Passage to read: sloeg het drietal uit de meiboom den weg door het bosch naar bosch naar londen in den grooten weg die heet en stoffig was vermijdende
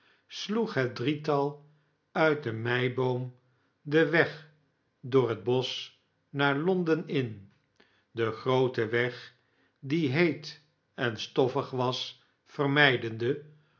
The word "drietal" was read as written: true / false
true